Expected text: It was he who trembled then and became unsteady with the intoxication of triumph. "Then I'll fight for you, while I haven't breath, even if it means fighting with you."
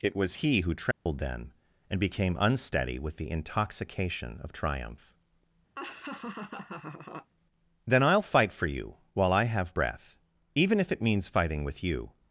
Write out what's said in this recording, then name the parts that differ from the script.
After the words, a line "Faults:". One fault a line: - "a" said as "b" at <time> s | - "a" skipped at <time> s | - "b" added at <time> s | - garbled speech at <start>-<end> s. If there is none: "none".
It was he who trembled then and became unsteady with the intoxication of triumph. "Then I'll fight for you, while I have breath, even if it means fighting with you."
Faults:
- "haven't" said as "have" at 9.4 s